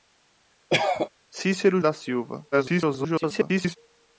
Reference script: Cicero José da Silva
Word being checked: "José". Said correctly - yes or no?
no